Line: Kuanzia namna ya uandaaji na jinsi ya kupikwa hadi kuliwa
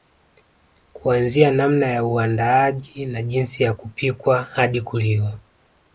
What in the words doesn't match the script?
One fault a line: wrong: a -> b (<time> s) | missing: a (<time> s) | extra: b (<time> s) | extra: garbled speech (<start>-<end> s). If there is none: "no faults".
no faults